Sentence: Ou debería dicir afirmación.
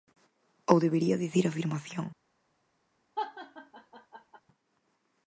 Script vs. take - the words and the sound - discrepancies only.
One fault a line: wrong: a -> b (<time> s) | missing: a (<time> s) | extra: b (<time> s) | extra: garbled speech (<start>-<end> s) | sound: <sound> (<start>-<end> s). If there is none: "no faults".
sound: laugh (3.2-4.4 s)